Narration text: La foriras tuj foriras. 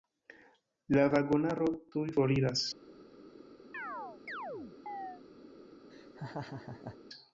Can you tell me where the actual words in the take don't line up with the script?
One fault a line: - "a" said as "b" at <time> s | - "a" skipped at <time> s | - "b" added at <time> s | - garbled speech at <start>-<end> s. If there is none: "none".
- "foriras" said as "vagonaro" at 1.1 s